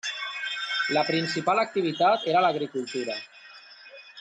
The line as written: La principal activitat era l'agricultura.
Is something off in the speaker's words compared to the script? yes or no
no